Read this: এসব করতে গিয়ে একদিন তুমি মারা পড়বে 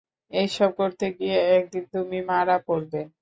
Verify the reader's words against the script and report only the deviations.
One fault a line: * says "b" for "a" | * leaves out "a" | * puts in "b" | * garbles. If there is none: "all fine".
all fine